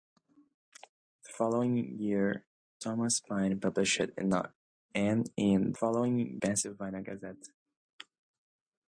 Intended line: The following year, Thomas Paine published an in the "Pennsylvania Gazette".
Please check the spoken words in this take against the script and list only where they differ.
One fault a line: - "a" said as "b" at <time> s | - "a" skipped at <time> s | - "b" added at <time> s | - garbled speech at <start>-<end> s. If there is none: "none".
- "the" said as "following" at 5.8 s